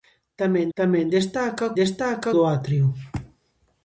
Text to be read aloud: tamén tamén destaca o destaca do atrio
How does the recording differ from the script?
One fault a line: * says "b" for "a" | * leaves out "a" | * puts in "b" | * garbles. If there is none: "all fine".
all fine